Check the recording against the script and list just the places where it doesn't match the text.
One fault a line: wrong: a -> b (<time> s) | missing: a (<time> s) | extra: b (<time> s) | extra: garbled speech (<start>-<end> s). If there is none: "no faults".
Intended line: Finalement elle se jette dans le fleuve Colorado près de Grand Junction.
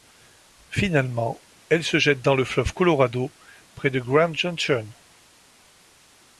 no faults